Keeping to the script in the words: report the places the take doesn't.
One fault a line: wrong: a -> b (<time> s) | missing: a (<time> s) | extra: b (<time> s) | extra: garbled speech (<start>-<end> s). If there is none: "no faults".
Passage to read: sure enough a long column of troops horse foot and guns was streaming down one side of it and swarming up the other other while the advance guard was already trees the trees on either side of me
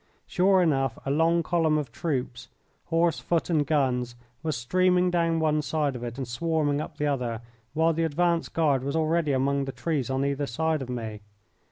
missing: other (7.4 s)
wrong: trees -> among (9.3 s)